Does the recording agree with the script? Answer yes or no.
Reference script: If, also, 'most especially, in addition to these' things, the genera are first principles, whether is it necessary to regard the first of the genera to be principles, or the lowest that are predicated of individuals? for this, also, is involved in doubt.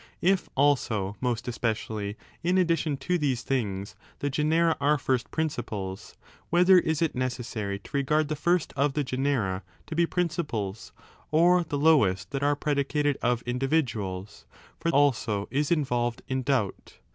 no